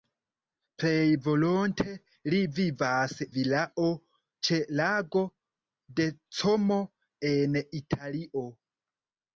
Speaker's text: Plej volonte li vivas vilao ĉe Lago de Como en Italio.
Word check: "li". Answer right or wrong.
right